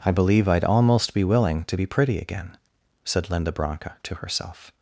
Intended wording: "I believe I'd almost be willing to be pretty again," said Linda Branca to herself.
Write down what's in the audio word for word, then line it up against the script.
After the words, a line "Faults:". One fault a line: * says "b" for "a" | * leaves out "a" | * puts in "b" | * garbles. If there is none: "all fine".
"I believe I'd almost be willing to be pretty again," said Linda Branca to herself.
Faults:
all fine